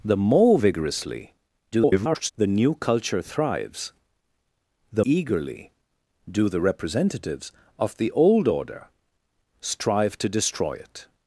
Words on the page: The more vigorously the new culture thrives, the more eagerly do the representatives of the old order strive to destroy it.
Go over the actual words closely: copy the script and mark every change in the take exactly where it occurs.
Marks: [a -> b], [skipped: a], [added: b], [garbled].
The more vigorously [garbled] the new culture thrives, the [skipped: more] eagerly do the representatives of the old order strive to destroy it.